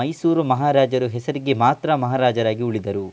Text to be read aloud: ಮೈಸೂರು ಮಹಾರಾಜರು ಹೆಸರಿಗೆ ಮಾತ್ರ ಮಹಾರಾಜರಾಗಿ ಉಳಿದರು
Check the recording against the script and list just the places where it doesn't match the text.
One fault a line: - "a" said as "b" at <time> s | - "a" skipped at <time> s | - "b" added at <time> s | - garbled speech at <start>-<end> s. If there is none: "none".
none